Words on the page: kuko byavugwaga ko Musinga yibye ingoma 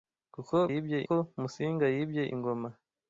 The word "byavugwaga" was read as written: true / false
false